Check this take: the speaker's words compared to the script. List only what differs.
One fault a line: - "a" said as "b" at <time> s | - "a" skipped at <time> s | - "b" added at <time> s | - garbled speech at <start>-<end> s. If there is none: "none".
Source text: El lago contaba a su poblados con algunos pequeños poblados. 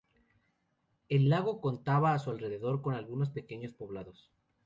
- "poblados" said as "alrededor" at 2.3 s